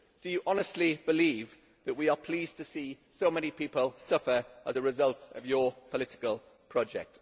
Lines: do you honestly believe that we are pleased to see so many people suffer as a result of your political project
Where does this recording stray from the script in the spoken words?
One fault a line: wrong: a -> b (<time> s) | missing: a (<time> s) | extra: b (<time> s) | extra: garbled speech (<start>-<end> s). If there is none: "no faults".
no faults